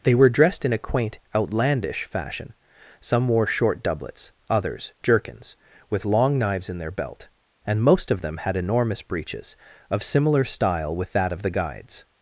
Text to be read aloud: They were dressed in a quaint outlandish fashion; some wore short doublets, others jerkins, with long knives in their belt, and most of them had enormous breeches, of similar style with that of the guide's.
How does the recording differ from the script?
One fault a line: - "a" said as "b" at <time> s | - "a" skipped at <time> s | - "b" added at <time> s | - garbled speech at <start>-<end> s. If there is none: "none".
none